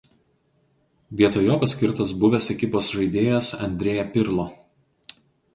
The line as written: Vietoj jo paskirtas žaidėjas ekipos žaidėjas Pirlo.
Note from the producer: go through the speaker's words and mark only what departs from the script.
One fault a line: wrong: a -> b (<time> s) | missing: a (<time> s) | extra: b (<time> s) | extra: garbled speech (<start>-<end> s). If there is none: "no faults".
wrong: žaidėjas -> buvęs (2.2 s)
extra: Andrea (3.7 s)